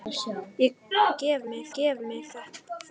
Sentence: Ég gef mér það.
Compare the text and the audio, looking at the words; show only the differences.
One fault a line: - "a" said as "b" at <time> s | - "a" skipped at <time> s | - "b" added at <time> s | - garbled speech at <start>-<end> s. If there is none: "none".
- "gef mér" added at 1.7 s